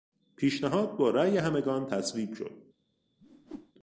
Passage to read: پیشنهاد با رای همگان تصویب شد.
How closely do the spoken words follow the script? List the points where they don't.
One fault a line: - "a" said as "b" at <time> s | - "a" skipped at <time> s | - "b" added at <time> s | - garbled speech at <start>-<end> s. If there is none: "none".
none